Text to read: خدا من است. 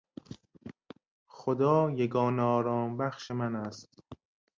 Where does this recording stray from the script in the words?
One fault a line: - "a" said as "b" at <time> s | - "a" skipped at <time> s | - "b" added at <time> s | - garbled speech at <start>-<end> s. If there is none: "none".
- "یگانه آرامبخش" added at 1.9 s